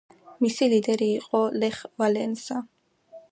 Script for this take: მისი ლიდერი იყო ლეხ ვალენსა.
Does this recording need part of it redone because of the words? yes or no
no